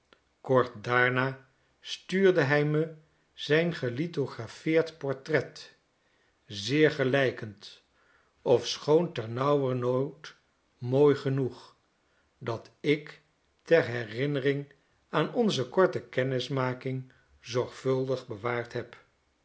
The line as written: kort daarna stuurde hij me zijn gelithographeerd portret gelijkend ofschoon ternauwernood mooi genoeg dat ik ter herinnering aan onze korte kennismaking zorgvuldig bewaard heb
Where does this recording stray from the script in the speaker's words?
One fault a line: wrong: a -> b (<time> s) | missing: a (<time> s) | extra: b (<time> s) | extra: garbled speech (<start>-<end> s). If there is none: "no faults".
extra: zeer (6.5 s)